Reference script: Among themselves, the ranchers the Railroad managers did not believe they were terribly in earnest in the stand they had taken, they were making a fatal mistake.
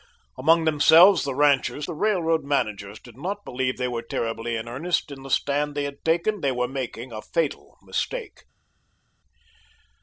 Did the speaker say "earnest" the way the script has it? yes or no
yes